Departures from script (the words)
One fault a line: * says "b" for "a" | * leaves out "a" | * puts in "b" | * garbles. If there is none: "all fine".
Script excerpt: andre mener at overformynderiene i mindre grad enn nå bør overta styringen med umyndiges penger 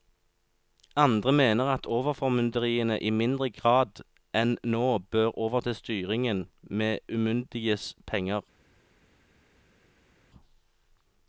all fine